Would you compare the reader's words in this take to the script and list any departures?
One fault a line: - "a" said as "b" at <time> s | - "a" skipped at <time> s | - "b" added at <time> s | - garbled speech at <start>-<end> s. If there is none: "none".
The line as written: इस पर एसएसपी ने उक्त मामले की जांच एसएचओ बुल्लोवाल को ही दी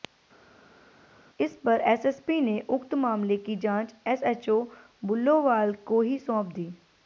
- "सौंप" added at 6.2 s